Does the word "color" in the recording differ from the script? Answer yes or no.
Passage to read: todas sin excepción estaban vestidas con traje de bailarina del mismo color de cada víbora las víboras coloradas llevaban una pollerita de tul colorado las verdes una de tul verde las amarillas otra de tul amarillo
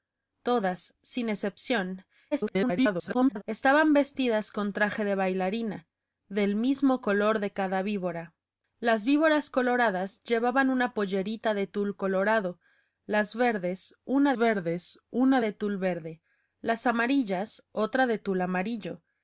no